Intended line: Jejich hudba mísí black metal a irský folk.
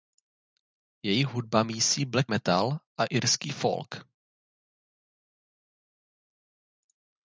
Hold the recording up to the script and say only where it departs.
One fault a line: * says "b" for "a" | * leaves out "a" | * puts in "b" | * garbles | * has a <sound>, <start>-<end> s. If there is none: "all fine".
all fine